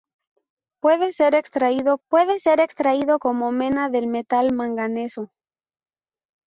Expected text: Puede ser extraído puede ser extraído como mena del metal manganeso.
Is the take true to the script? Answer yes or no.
yes